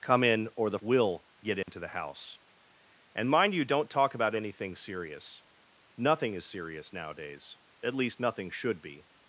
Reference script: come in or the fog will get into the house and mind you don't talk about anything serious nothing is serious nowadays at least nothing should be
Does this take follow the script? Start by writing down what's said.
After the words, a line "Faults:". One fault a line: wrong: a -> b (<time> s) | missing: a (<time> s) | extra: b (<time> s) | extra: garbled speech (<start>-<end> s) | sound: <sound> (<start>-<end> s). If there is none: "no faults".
come in or the will get into the house and mind you don't talk about anything serious nothing is serious nowadays at least nothing should be
Faults:
missing: fog (0.8 s)
sound: dropout (1.6-1.7 s)